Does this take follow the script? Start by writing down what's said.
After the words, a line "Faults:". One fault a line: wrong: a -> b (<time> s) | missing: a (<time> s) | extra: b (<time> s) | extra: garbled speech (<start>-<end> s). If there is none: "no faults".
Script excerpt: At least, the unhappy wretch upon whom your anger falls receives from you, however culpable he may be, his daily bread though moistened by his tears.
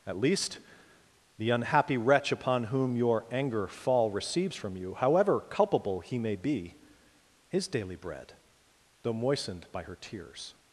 At least, the unhappy wretch upon whom your anger fall receives from you, however culpable he may be, his daily bread though moistened by her tears.
Faults:
wrong: falls -> fall (3.7 s)
wrong: his -> her (9.8 s)